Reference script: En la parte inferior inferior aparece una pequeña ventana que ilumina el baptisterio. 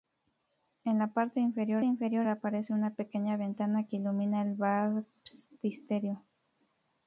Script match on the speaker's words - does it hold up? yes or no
yes